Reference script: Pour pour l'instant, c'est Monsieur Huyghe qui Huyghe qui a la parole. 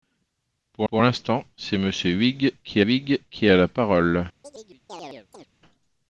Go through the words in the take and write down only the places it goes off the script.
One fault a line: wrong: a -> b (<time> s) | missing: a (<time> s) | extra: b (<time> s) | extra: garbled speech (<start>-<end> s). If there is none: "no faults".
no faults